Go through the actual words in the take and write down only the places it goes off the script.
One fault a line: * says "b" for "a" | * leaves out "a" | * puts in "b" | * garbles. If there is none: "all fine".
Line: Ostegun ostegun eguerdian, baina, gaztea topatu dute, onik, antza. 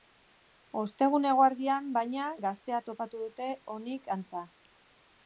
* leaves out "ostegun"